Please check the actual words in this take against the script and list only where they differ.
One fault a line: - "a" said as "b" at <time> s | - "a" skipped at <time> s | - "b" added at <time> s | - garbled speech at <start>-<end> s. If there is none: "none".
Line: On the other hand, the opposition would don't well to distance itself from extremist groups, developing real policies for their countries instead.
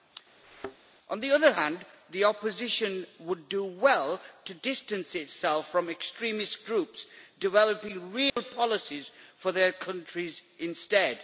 - "don't" said as "do" at 3.5 s